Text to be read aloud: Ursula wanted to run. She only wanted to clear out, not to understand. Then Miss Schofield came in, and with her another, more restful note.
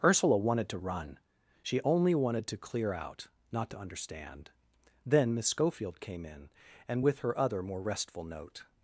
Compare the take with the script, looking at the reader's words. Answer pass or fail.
fail